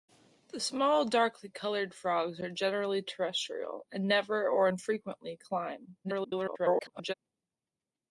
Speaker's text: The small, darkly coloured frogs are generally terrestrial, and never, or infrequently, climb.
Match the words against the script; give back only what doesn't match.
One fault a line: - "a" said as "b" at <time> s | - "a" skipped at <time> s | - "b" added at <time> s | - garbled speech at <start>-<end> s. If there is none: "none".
- garbled speech at 6.0-7.1 s